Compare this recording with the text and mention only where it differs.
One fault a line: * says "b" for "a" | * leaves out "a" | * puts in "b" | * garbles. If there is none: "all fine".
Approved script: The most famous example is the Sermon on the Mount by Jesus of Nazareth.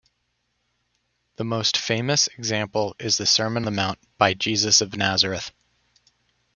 * leaves out "on"